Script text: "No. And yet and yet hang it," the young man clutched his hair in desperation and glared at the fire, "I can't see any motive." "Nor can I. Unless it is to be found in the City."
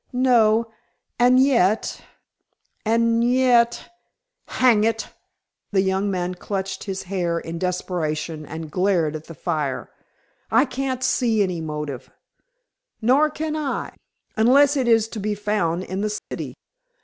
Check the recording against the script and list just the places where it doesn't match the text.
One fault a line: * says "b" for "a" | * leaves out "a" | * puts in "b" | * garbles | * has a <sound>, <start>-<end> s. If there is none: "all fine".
* has a dropout, 16.2-16.3 s